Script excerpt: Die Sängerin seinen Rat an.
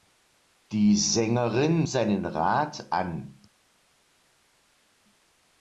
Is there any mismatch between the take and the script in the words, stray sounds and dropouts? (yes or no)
no